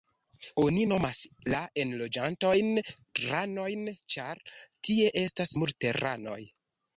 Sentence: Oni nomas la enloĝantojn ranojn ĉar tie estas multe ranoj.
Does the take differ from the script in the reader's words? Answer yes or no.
no